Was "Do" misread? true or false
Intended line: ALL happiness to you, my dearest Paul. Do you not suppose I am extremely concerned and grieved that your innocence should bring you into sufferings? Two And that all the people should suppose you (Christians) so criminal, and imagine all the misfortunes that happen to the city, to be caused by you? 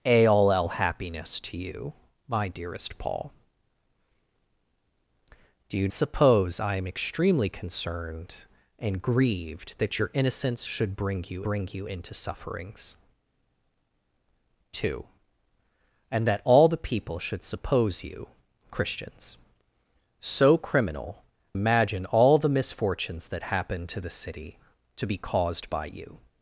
false